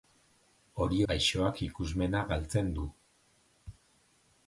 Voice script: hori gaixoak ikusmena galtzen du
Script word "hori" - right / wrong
right